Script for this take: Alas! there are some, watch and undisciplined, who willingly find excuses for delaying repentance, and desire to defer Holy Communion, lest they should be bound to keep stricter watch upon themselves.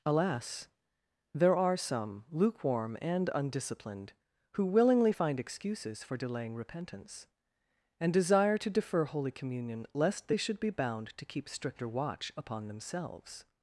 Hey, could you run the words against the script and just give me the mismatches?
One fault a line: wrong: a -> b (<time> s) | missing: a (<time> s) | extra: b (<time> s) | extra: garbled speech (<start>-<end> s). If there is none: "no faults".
wrong: watch -> lukewarm (2.3 s)